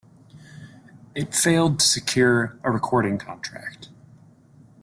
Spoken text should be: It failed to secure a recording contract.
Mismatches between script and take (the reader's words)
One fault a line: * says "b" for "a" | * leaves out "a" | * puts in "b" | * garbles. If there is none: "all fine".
all fine